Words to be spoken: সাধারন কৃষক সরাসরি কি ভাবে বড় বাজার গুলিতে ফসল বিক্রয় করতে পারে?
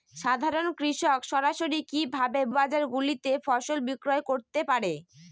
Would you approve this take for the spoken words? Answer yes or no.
no